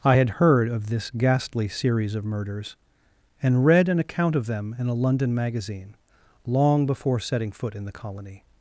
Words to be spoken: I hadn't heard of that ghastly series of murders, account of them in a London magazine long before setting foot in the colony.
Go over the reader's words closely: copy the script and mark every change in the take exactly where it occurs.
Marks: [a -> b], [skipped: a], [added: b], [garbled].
I [hadn't -> had] heard of [that -> this] ghastly series of murders, [added: and read an] account of them in a London magazine long before setting foot in the colony.